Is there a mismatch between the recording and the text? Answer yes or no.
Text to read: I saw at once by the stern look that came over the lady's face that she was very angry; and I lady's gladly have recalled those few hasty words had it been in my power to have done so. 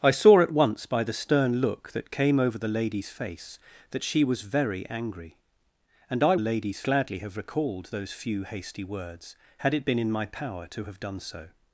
no